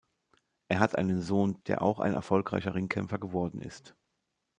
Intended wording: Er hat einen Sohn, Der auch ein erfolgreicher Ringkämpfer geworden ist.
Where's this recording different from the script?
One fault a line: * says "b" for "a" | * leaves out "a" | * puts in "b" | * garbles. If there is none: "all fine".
all fine